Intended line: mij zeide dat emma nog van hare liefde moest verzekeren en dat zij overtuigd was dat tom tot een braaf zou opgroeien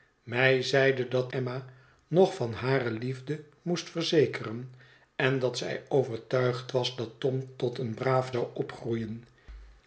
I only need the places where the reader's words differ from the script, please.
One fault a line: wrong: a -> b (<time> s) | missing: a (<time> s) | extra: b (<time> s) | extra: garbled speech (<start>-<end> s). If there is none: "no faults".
no faults